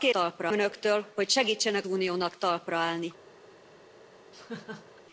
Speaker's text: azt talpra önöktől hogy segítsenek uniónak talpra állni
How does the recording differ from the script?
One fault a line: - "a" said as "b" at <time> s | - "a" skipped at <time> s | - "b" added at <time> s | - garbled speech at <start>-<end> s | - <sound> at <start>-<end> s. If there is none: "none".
- laugh at 4.3-5.0 s